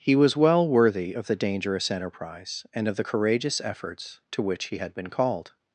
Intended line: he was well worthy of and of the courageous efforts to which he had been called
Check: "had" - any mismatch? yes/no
no